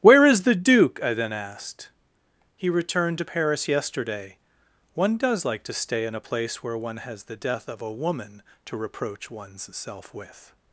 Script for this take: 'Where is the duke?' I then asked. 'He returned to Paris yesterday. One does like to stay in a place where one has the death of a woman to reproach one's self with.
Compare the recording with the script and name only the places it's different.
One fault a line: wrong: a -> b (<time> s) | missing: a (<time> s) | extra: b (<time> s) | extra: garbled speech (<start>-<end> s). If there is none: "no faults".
no faults